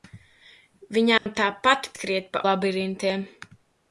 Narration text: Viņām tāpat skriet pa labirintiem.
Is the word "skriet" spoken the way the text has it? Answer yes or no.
yes